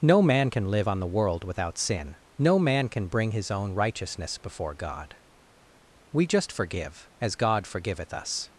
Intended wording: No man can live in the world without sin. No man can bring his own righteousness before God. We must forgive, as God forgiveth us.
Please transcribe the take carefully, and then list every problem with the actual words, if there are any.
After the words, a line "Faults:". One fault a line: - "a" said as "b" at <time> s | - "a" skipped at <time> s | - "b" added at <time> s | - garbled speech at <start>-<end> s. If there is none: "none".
No man can live on the world without sin. No man can bring his own righteousness before God. We just forgive, as God forgiveth us.
Faults:
- "in" said as "on" at 0.9 s
- "must" said as "just" at 6.3 s